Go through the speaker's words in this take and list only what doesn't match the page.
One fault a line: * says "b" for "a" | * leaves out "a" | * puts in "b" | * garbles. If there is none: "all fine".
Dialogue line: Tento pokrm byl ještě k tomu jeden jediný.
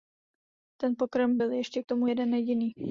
* says "Ten" for "Tento"